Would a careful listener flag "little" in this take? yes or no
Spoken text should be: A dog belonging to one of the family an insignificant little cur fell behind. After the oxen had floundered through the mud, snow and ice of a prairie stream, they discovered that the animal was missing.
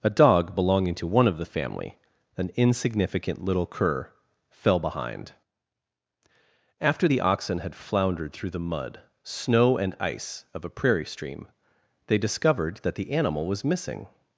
no